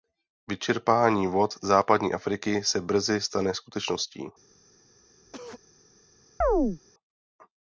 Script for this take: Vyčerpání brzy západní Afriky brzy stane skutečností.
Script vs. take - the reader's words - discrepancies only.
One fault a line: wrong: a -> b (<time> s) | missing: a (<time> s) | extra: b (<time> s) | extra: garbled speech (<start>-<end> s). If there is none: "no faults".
wrong: brzy -> vod (1.3 s)
extra: se (2.6 s)